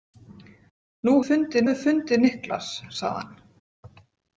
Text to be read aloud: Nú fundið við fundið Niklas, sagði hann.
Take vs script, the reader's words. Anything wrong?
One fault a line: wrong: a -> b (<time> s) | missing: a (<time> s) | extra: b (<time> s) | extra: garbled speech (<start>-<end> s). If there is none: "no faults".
no faults